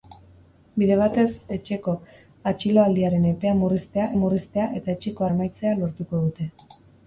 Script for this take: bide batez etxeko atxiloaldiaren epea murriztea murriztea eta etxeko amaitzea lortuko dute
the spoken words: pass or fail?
pass